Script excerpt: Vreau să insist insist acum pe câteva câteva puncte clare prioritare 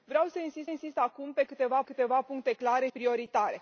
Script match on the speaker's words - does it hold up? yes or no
yes